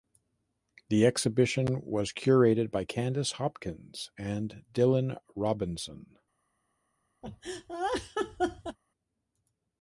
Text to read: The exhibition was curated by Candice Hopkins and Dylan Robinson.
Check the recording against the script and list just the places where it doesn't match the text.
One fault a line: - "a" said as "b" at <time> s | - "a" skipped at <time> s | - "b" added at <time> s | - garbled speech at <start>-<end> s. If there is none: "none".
none